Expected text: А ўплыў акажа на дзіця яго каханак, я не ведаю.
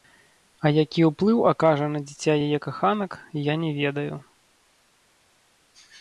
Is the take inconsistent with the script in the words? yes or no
yes